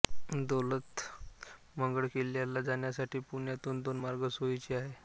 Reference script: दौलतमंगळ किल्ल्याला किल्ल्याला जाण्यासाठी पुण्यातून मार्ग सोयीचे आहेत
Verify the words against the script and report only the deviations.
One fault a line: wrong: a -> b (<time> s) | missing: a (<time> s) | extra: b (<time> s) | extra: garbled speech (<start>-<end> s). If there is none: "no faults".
missing: किल्ल्याला (2.6 s)
extra: दोन (3.8 s)